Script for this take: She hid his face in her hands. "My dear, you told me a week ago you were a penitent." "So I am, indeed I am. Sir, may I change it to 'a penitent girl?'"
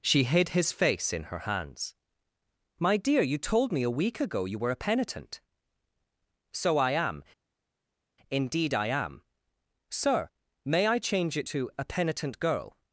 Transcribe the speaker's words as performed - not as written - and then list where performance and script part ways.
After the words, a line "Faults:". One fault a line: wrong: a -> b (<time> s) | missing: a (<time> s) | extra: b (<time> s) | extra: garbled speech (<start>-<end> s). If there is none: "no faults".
She hid his face in her hands. "My dear, you told me a week ago you were a penitent." "So I am, indeed I am. Sir, may I change it to 'a penitent girl?'"
Faults:
no faults